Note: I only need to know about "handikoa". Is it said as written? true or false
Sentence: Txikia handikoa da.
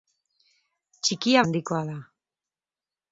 true